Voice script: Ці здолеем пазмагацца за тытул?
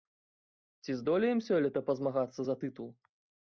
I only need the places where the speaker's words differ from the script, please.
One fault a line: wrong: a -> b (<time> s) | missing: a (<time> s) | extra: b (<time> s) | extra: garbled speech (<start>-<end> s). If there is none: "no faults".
extra: сёлета (1.5 s)